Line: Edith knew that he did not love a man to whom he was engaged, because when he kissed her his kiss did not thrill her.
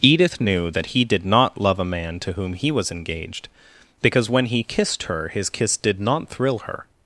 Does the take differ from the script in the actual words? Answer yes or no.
no